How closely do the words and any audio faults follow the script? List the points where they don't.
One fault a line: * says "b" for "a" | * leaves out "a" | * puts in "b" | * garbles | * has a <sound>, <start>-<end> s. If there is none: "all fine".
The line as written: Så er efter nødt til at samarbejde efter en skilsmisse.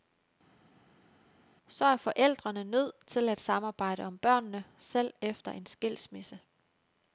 * says "forældrene" for "efter"
* puts in "om børnene selv"